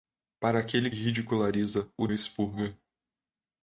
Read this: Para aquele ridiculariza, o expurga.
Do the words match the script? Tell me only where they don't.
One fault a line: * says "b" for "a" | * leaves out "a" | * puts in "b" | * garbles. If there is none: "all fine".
all fine